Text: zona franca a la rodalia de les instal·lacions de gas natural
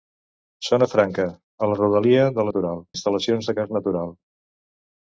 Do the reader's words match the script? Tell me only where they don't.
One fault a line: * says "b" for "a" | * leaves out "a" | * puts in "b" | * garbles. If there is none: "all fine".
* says "natural" for "les"